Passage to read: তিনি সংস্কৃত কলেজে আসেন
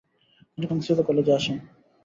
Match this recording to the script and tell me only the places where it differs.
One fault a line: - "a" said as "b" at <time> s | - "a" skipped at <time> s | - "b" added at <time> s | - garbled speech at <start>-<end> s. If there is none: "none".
none